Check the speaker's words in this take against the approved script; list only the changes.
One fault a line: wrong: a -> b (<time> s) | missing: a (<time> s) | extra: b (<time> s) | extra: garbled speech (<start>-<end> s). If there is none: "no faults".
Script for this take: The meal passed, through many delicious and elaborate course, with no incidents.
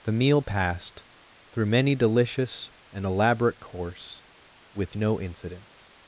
no faults